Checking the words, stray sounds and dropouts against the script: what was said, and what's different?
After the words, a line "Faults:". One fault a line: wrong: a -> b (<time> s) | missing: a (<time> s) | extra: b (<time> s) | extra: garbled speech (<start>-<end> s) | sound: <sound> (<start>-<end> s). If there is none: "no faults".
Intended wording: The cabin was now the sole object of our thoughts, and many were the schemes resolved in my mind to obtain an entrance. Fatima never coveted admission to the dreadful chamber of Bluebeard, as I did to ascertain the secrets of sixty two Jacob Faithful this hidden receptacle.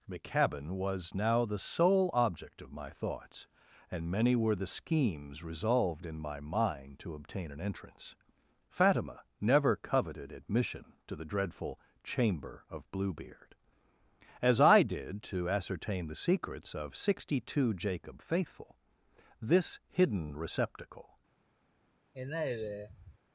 The cabin was now the sole object of my thoughts, and many were the schemes resolved in my mind to obtain an entrance. Fatima never coveted admission to the dreadful chamber of Bluebeard, as I did to ascertain the secrets of sixty two Jacob Faithful this hidden receptacle.
Faults:
wrong: our -> my (2.7 s)
sound: sigh (22.1-23.2 s)